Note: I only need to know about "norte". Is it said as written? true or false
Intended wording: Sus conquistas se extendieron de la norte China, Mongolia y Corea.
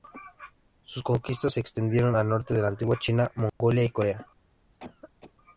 false